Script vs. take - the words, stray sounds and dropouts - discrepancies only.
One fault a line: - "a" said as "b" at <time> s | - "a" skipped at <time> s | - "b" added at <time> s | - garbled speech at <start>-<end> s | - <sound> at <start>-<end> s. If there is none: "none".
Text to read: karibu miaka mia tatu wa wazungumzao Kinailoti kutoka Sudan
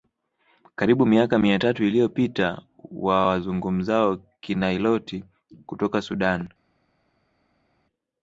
- "iliyopita" added at 1.8 s